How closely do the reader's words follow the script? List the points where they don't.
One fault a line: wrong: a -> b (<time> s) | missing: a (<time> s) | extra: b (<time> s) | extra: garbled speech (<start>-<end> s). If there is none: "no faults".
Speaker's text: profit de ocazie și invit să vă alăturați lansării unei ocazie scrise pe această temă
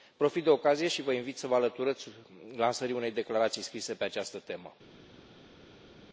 extra: vă (1.0 s)
wrong: ocazie -> declarații (3.1 s)